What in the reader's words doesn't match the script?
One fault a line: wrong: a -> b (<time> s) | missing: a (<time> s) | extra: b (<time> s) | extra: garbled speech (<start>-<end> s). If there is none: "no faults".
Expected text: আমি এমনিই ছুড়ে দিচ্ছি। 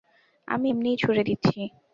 no faults